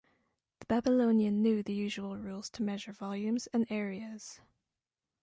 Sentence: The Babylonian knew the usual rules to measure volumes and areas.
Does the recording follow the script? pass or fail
pass